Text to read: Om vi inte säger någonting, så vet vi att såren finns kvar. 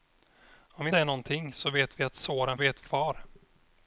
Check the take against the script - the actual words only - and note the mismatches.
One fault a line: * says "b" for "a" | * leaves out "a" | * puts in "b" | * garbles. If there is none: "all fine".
* leaves out "inte"
* says "vet" for "finns"